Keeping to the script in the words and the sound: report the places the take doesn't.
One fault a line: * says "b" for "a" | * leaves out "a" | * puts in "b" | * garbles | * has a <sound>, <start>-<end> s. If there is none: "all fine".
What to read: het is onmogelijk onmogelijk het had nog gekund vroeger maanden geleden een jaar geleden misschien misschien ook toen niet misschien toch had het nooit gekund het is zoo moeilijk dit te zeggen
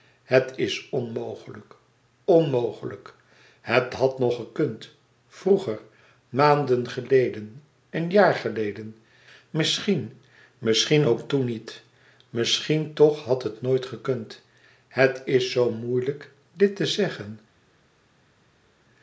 all fine